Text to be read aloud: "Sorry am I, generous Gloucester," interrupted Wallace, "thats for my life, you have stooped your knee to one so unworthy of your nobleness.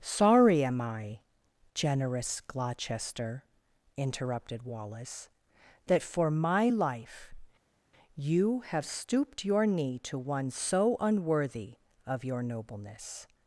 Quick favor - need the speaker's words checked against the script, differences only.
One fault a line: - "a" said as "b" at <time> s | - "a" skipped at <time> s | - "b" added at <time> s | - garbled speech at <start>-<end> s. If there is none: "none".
- "thats" said as "that" at 5.8 s